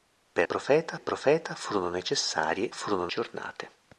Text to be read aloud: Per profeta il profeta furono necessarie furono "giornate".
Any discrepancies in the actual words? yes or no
no